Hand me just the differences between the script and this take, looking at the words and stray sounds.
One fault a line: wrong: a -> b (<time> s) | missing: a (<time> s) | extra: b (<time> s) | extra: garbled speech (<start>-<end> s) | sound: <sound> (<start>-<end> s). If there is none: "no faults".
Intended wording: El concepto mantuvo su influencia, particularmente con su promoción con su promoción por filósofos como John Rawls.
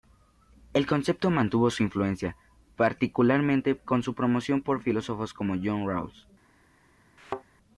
missing: con su promoción (4.6 s)
sound: thud (7.2-7.4 s)